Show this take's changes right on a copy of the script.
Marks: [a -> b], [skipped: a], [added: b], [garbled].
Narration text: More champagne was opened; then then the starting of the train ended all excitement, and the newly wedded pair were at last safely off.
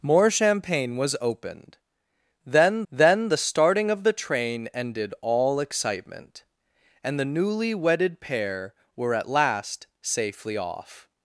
More champagne was opened; then then the starting of the train ended all excitement, and the newly wedded pair were at last safely off.